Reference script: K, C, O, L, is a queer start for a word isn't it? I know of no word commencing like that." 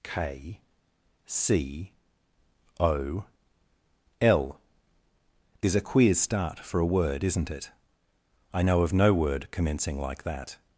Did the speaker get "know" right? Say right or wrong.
right